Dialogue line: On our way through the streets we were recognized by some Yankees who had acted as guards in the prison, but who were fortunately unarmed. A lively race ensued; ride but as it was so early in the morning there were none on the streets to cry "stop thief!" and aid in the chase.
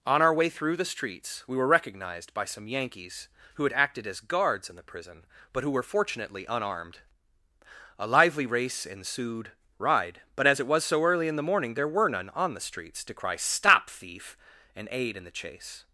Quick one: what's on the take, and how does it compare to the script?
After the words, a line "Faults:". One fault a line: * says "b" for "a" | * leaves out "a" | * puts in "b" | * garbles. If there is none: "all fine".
On our way through the streets we were recognized by some Yankees who had acted as guards in the prison, but who were fortunately unarmed. A lively race ensued; ride but as it was so early in the morning there were none on the streets to cry "stop thief!" and aid in the chase.
Faults:
all fine